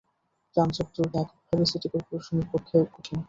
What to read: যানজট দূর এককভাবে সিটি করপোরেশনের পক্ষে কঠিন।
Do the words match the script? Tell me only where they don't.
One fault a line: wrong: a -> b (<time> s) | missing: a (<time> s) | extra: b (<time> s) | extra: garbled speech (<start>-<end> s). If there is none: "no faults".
no faults